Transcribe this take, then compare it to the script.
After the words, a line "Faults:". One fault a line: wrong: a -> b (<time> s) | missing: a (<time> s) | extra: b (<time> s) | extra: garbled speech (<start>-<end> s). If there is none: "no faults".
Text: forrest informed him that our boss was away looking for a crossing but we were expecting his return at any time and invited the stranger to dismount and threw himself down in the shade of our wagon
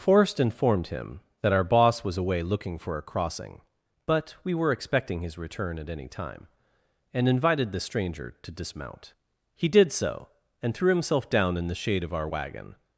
forrest informed him that our boss was away looking for a crossing but we were expecting his return at any time and invited the stranger to dismount he did so and threw himself down in the shade of our wagon
Faults:
extra: he did so (9.5 s)